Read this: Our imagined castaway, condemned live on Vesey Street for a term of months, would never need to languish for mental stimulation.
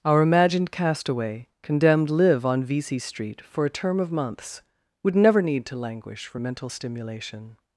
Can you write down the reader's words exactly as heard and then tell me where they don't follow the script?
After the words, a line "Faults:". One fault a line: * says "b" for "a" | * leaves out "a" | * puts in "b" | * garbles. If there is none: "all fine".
Our imagined castaway, condemned live on Vesey Street for a term of months, would never need to languish for mental stimulation.
Faults:
all fine